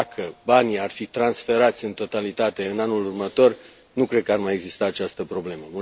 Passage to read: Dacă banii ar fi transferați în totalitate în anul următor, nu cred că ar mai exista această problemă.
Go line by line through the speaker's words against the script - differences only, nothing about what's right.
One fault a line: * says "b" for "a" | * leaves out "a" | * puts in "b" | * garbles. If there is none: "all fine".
all fine